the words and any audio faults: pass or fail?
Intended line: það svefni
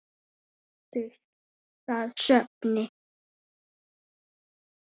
pass